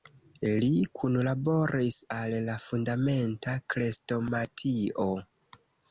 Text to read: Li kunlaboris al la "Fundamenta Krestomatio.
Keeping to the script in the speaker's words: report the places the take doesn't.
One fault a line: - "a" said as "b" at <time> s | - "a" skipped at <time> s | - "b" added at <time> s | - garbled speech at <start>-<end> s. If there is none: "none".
none